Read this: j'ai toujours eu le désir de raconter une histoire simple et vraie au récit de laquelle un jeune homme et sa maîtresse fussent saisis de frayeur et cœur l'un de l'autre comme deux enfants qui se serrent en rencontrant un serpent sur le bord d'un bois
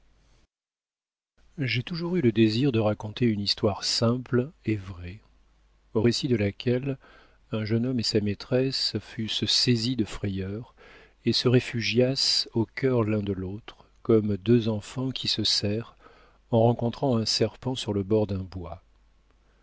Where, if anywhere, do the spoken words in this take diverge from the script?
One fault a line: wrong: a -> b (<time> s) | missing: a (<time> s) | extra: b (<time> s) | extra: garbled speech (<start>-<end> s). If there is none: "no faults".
extra: se réfugiassent au (11.3 s)